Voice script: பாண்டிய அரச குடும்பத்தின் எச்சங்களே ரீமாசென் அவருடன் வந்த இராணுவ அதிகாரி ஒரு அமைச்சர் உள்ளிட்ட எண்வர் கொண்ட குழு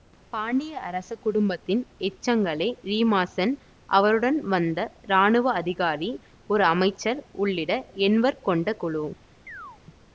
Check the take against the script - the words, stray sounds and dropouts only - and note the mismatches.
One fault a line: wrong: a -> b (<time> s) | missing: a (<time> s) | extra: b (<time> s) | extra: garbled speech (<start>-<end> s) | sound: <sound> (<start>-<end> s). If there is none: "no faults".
sound: chirp (9.5-9.8 s)